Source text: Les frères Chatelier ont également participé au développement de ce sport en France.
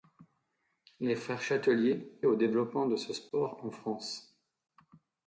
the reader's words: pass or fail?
fail